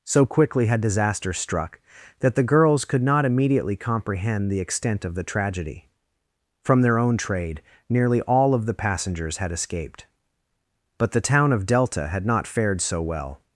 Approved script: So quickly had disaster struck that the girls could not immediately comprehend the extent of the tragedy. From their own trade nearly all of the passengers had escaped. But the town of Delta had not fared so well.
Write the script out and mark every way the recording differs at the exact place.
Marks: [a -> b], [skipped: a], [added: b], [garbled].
So quickly had disaster struck that the girls could not immediately comprehend the extent of the tragedy. From their own trade nearly all of the passengers had escaped. But the town of Delta had not fared so well.